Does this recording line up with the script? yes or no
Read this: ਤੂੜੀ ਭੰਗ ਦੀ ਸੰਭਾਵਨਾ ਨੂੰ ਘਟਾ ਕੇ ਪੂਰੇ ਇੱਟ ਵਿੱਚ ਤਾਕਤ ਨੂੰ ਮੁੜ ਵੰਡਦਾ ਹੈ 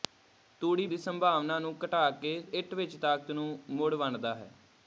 no